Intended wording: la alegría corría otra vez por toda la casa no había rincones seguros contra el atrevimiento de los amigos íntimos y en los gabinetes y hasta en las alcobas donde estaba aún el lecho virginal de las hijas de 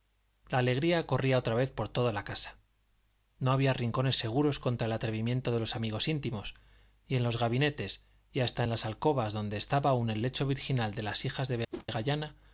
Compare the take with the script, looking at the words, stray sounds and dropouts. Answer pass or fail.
fail